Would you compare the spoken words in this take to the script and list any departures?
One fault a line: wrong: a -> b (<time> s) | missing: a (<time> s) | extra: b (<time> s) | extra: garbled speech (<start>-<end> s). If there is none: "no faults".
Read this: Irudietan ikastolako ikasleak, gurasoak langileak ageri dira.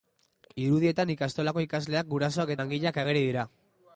no faults